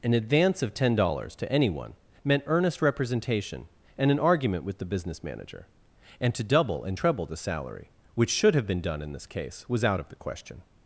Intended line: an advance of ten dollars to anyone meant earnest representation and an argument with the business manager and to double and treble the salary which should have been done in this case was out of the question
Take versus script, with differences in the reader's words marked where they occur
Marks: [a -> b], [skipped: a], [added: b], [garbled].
an advance of ten dollars to anyone meant earnest representation and an argument with the business manager and to double and treble the salary which should have been done in this case was out of the question